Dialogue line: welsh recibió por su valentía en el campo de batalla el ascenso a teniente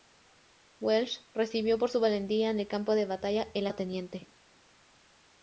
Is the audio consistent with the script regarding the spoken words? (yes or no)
no